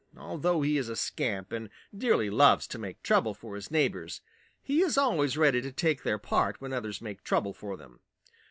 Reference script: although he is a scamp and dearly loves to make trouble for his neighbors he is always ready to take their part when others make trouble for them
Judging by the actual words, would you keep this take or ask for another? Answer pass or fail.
pass